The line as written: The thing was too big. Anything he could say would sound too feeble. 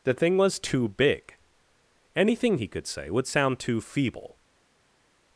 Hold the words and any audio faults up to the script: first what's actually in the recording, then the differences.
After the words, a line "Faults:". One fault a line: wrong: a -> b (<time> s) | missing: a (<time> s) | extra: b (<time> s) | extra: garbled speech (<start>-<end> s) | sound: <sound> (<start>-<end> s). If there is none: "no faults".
The thing was too big. Anything he could say would sound too feeble.
Faults:
no faults